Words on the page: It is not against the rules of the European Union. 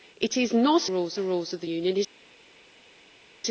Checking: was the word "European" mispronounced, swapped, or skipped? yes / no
yes